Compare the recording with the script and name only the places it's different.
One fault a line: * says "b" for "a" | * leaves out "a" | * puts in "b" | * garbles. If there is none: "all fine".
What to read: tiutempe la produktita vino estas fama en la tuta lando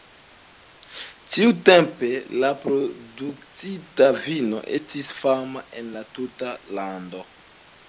* says "estis" for "estas"